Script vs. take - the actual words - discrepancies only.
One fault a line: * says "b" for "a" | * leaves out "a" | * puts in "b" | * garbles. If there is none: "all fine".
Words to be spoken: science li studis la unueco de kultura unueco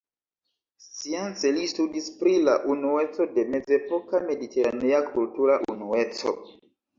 * puts in "pri"
* puts in "mezepoka mediteranea"